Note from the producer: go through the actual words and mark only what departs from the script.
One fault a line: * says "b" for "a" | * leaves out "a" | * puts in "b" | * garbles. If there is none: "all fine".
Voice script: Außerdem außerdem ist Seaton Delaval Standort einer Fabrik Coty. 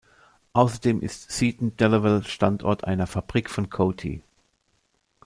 * leaves out "außerdem"
* puts in "von"